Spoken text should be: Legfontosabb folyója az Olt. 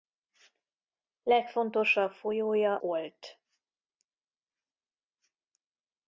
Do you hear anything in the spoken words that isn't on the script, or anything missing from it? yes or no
yes